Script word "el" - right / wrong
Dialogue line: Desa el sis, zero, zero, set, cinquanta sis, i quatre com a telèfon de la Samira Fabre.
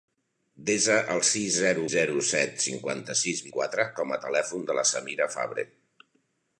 right